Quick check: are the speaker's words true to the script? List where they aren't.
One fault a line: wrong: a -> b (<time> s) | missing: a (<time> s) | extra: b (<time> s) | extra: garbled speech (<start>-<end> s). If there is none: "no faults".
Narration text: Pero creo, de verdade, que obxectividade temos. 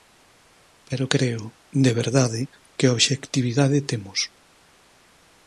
no faults